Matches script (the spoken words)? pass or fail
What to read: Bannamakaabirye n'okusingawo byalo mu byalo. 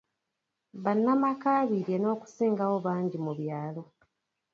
fail